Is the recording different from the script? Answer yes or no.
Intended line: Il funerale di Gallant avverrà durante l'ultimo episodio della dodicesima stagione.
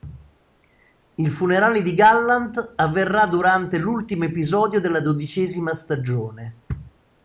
no